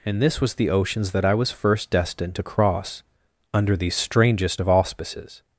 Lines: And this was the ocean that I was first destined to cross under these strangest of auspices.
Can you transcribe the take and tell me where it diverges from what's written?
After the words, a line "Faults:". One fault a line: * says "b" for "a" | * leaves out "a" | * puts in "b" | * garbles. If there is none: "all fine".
And this was the oceans that I was first destined to cross under these strangest of auspices.
Faults:
* says "oceans" for "ocean"